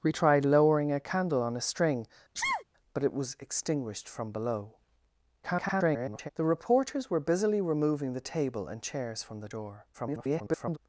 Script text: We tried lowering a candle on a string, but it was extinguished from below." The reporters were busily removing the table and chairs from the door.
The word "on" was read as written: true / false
true